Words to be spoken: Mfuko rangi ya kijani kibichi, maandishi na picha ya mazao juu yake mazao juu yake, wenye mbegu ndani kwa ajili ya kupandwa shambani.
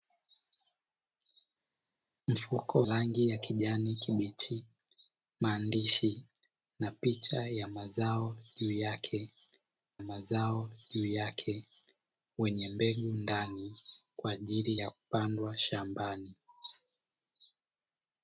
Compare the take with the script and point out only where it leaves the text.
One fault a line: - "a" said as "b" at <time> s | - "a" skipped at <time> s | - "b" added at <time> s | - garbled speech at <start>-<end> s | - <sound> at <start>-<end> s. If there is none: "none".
none